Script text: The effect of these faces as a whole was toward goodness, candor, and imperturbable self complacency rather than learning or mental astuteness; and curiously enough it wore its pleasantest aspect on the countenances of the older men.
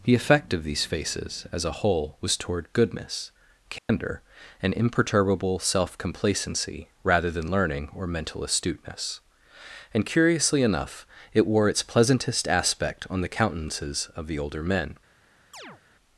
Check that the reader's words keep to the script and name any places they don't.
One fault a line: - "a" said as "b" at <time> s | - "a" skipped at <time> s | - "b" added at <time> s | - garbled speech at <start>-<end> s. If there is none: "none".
none